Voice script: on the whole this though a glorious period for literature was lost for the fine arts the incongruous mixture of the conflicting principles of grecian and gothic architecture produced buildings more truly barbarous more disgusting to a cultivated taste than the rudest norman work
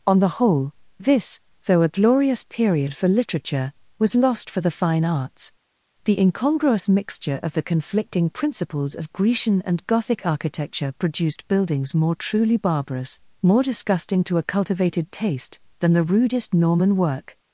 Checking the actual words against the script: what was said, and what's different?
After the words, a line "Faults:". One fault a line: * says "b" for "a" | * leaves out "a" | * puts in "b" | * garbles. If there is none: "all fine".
on the whole this though a glorious period for literature was lost for the fine arts the incongruous mixture of the conflicting principles of grecian and gothic architecture produced buildings more truly barbarous more disgusting to a cultivated taste than the rudest norman work
Faults:
all fine